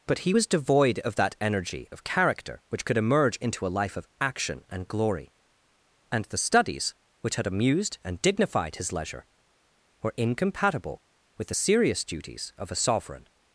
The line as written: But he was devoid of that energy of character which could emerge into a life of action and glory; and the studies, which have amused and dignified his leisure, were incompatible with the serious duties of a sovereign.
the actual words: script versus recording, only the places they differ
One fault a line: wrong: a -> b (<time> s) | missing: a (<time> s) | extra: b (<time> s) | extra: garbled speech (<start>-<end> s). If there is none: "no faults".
wrong: have -> had (7.3 s)